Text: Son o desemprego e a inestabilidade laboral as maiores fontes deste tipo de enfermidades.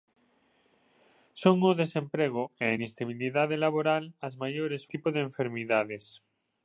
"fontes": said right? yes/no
no